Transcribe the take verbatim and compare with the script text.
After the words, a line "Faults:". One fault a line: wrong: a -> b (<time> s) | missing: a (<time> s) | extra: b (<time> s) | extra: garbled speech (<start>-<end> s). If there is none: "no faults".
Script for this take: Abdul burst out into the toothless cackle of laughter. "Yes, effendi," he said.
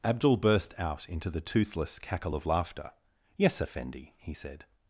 Abdul burst out into the toothless cackle of laughter. "Yes, effendi," he said.
Faults:
no faults